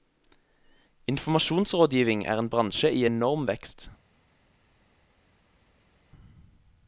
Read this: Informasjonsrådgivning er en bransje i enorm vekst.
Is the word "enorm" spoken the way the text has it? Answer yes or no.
yes